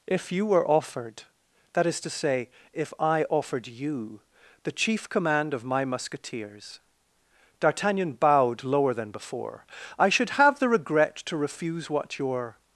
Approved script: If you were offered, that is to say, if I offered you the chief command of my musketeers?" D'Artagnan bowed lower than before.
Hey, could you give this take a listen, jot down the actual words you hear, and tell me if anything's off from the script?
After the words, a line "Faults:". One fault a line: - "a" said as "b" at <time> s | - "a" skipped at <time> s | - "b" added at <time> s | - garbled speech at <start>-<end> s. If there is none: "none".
If you were offered, that is to say, if I offered you the chief command of my musketeers?" D'Artagnan bowed lower than before. "I should have the regret to refuse what your
Faults:
- "I should have the regret to refuse what your" added at 10.0 s